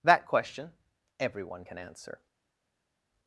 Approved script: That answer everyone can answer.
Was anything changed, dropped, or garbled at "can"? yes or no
no